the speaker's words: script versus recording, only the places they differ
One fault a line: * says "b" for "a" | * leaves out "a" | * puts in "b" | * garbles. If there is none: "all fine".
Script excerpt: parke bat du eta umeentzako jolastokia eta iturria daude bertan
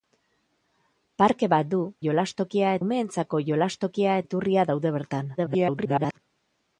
* says "jolastokia" for "eta"
* leaves out "eta"
* garbles